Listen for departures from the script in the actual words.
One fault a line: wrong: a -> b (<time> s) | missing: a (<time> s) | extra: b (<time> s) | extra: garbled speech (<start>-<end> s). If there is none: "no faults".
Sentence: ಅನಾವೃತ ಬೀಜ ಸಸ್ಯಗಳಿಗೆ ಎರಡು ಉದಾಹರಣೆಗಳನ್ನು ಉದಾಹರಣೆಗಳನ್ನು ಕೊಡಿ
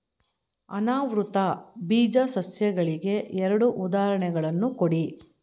missing: ಉದಾಹರಣೆಗಳನ್ನು (4.7 s)